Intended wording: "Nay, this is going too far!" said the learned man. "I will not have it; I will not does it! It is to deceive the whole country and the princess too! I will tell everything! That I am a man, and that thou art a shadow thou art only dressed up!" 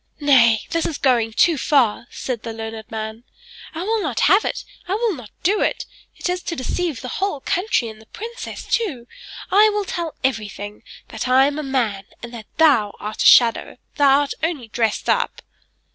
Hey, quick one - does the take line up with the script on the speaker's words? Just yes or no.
no